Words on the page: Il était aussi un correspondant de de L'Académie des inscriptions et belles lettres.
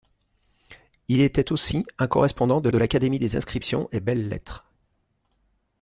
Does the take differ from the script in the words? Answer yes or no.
no